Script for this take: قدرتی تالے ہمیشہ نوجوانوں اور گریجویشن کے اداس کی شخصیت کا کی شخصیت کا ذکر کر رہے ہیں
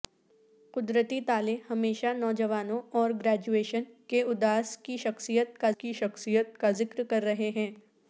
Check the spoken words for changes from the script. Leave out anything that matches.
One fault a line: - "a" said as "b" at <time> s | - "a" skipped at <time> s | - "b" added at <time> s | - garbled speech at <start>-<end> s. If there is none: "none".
none